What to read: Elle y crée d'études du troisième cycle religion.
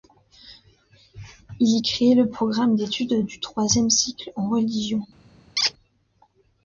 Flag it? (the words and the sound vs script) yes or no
yes